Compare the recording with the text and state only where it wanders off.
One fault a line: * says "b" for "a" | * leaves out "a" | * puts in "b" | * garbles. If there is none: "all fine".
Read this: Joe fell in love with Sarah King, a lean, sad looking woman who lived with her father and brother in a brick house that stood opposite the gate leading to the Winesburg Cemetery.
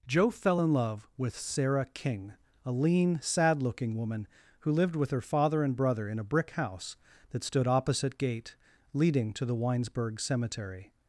* leaves out "the"